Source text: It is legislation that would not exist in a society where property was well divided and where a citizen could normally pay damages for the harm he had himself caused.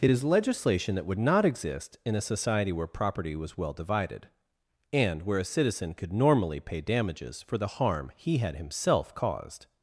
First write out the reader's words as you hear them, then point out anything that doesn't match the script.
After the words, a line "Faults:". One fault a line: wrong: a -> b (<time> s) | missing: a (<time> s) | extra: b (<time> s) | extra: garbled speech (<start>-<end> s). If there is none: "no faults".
It is legislation that would not exist in a society where property was well divided and where a citizen could normally pay damages for the harm he had himself caused.
Faults:
no faults